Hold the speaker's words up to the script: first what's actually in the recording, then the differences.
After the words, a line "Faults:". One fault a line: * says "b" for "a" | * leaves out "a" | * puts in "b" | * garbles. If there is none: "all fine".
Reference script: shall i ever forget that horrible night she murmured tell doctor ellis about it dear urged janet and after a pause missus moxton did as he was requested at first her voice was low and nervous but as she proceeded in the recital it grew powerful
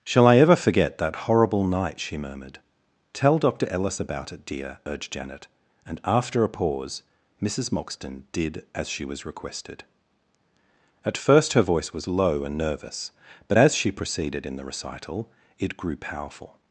shall i ever forget that horrible night she murmured tell doctor ellis about it dear urged janet and after a pause missus moxton did as she was requested at first her voice was low and nervous but as she proceeded in the recital it grew powerful
Faults:
* says "she" for "he"